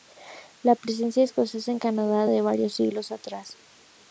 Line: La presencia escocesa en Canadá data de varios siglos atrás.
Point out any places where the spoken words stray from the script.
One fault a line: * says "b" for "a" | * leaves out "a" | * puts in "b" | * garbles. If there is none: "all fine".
* leaves out "data"